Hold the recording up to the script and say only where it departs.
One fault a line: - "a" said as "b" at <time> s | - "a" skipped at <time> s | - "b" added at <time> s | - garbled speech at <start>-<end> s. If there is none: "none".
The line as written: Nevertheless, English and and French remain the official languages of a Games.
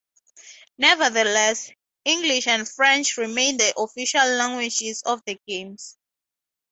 - "and" skipped at 2.7 s
- "a" said as "the" at 5.2 s